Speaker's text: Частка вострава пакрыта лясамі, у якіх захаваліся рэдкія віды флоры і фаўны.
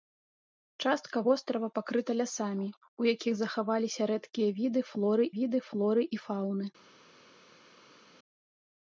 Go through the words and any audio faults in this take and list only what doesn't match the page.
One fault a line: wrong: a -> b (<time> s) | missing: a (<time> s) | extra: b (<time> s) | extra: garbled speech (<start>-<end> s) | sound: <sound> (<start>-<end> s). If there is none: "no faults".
extra: віды флоры (5.4 s)